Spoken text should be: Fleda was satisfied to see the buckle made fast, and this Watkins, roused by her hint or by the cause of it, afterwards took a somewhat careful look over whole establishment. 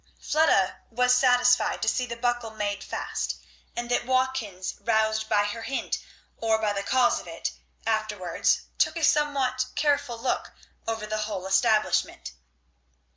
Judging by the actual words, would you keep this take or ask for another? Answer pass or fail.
fail